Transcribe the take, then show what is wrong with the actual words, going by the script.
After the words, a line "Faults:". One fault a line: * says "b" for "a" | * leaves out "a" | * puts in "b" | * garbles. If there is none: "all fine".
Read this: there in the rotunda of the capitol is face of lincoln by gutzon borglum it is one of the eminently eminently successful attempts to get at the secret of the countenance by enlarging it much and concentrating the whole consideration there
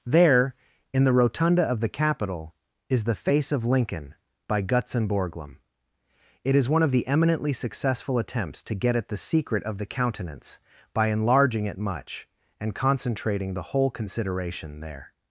there in the rotunda of the capitol is the face of lincoln by gutzon borglum it is one of the eminently successful attempts to get at the secret of the countenance by enlarging it much and concentrating the whole consideration there
Faults:
* puts in "the"
* leaves out "eminently"